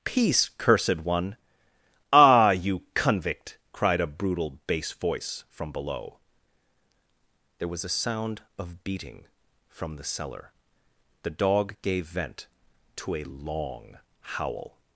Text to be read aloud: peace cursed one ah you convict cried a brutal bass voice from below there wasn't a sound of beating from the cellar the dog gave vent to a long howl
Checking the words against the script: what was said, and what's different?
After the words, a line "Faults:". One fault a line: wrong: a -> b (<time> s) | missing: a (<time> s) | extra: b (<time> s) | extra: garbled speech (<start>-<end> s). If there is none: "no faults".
peace cursed one ah you convict cried a brutal bass voice from below there was a sound of beating from the cellar the dog gave vent to a long howl
Faults:
wrong: wasn't -> was (7.7 s)